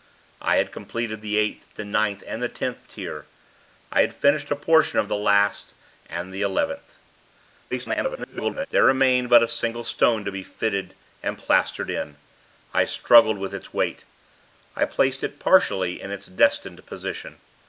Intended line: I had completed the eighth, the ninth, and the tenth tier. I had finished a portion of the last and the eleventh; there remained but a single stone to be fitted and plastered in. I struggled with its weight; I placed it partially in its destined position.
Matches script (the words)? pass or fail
fail